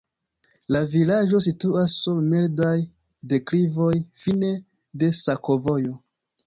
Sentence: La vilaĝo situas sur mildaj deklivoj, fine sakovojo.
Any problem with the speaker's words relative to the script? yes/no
yes